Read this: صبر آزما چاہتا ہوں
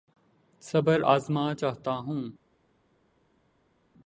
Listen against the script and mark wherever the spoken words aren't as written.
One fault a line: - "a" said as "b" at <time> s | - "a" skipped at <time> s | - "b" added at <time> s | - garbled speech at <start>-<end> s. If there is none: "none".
none